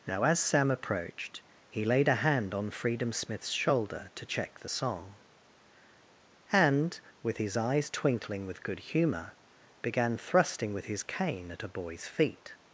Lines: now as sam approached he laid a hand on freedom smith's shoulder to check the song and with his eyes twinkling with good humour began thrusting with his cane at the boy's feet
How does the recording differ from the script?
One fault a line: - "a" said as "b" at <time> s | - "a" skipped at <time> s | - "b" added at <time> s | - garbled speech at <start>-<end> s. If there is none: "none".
- "the" said as "a" at 11.6 s